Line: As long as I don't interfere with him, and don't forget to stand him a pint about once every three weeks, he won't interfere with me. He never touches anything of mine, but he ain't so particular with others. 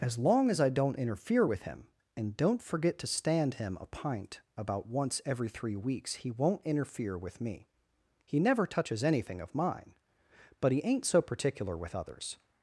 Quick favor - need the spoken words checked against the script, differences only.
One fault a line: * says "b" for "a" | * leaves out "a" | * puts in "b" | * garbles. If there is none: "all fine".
all fine